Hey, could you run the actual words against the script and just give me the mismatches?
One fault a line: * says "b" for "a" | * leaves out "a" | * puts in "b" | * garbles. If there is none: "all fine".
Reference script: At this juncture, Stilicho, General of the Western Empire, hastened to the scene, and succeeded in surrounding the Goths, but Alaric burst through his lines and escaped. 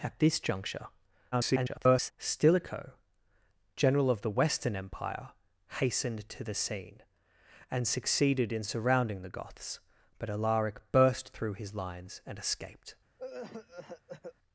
* garbles